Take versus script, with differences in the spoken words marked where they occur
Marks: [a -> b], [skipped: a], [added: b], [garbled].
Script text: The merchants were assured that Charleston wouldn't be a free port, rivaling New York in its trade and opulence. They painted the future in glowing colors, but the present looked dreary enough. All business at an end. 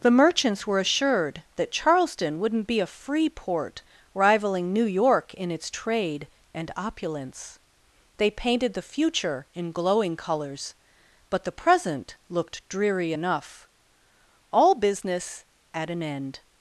The merchants were assured that Charleston wouldn't be a free port, rivaling New York in its trade and opulence. They painted the future in glowing colors, but the present looked dreary enough. All business at an end.